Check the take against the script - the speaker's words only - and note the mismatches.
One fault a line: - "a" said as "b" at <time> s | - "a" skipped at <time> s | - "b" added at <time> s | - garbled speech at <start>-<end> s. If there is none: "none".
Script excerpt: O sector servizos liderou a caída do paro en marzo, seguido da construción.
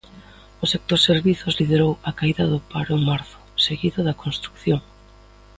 none